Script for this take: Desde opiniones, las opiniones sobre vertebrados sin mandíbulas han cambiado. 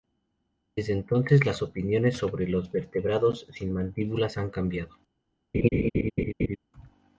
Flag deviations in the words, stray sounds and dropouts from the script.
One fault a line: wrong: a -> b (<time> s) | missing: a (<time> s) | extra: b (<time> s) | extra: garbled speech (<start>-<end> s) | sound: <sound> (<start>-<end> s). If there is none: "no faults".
wrong: opiniones -> entonces (0.9 s)
extra: los (2.5 s)
sound: laugh (5.5-6.6 s)